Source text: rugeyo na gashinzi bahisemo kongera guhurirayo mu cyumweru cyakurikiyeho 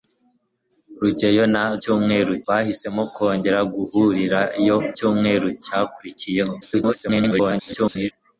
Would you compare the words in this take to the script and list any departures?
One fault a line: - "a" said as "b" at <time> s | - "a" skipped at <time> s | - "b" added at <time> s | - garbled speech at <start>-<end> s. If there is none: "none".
- "gashinzi" said as "cyumweru" at 1.8 s
- "mu" skipped at 4.8 s
- garbled speech at 6.6-8.1 s